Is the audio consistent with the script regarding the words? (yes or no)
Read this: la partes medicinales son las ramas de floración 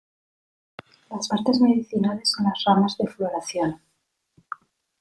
no